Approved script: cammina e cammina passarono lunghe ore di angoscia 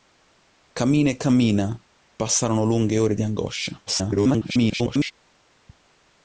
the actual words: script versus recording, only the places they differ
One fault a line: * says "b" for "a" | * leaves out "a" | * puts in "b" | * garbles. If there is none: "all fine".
* garbles